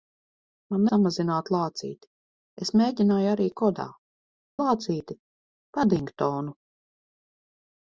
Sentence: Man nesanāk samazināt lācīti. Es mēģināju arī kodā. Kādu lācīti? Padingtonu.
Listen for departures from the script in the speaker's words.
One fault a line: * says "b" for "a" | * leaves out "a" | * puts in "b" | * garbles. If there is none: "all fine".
* leaves out "nesanāk"
* leaves out "Kādu"